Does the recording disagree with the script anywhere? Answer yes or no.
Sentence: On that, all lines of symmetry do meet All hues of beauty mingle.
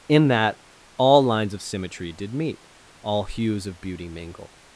yes